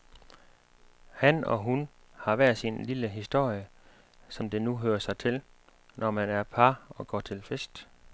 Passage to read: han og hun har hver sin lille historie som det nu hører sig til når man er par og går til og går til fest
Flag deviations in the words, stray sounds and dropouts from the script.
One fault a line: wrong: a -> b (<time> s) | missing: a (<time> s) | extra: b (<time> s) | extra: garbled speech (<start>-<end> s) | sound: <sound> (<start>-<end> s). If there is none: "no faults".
missing: og går til (7.4 s)